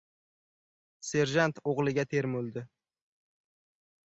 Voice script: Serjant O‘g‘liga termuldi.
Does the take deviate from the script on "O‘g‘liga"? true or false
false